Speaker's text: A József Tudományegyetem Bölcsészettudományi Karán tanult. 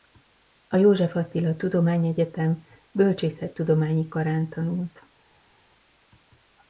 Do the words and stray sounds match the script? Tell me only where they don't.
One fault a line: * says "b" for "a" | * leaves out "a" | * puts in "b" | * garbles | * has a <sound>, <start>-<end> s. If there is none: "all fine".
* puts in "Attila"